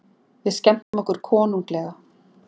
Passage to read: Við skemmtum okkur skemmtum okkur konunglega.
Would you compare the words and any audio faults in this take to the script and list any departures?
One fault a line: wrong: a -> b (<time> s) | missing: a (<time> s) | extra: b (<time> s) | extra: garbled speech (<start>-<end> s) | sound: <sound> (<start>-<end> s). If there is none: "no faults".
sound: dropout (0.8-0.9 s)
missing: skemmtum okkur (1.2 s)